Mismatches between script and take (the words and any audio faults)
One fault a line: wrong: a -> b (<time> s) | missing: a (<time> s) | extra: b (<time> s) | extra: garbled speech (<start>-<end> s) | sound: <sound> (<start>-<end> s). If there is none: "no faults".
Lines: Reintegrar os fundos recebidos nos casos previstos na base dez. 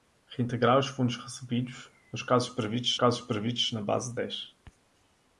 extra: casos previstos (2.9 s)